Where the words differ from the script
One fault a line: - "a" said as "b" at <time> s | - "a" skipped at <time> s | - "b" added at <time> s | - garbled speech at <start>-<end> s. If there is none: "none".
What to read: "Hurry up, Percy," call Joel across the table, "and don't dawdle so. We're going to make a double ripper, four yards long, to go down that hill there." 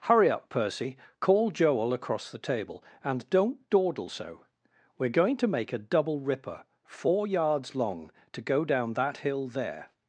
none